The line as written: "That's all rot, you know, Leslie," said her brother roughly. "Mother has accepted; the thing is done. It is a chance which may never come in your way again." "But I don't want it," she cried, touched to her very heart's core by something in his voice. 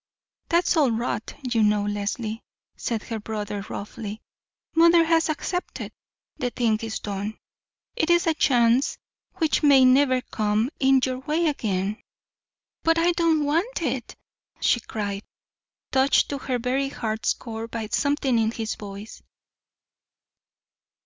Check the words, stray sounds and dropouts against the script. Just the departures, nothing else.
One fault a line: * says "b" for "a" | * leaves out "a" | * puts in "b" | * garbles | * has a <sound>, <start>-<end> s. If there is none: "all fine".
all fine